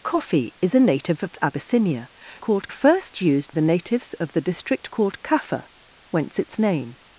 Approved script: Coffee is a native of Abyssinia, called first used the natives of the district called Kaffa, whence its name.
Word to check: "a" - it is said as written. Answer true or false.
true